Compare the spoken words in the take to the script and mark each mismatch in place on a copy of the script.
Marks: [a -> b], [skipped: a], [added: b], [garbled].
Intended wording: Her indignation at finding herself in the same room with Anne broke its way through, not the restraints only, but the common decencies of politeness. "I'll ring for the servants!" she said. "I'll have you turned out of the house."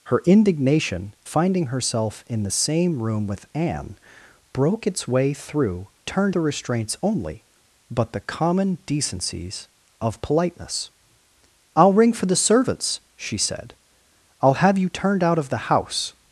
Her indignation [skipped: at] finding herself in the same room with Anne broke its way through, [not -> turned] the restraints only, but the common decencies of politeness. "I'll ring for the servants!" she said. "I'll have you turned out of the house."